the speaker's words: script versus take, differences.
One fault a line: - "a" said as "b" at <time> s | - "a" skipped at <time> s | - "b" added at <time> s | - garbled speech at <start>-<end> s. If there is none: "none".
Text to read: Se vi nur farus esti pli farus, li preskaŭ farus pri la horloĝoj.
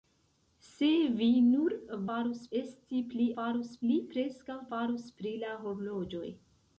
none